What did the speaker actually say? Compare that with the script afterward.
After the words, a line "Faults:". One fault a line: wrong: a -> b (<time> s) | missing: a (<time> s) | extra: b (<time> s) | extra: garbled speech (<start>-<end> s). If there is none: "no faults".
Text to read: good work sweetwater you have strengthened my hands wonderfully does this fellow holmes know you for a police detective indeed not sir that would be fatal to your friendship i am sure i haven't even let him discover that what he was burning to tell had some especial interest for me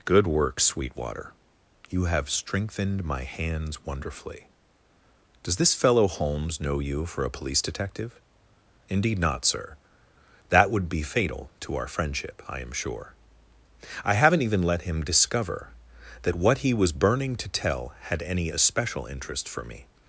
good work sweetwater you have strengthened my hands wonderfully does this fellow holmes know you for a police detective indeed not sir that would be fatal to our friendship i am sure i haven't even let him discover that what he was burning to tell had any especial interest for me
Faults:
wrong: your -> our (11.8 s)
wrong: some -> any (18.2 s)